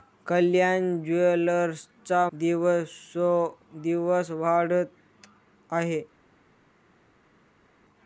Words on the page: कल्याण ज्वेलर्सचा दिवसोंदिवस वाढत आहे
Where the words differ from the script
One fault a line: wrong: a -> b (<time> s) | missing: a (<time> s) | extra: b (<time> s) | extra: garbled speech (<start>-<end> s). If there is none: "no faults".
no faults